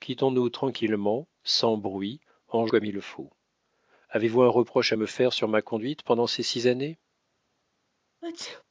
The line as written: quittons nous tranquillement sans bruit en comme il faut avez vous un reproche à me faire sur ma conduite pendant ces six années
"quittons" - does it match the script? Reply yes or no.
yes